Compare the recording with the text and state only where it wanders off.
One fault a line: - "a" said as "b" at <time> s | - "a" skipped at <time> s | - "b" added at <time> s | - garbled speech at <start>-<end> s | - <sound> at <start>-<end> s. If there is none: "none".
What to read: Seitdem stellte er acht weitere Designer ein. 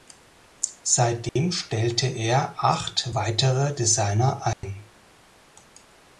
- dropout at 1.3-1.4 s
- dropout at 4.5-4.6 s